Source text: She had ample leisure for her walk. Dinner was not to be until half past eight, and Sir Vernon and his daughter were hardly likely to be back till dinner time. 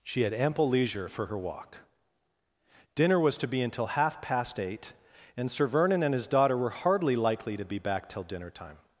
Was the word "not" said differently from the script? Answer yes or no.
yes